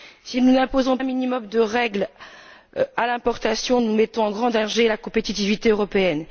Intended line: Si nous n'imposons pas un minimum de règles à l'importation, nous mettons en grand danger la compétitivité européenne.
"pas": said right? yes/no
no